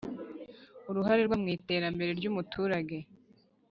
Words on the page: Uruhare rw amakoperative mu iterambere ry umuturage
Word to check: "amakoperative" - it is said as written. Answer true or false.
false